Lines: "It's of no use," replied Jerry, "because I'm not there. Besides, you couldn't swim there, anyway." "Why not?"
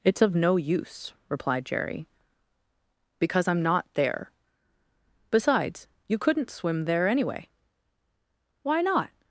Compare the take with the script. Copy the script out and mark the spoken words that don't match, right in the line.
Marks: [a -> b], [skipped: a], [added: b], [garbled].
"It's of no use," replied Jerry, "because I'm not there. Besides, you couldn't swim there, anyway." "Why not?"